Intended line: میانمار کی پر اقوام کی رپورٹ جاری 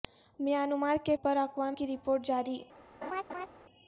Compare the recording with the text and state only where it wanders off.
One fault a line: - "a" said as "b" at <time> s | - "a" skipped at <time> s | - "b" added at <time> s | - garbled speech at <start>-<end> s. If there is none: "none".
none